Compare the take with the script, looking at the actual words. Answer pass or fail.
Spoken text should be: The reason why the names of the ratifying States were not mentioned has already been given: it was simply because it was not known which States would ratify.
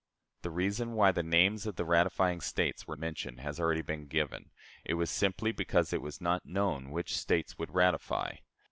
fail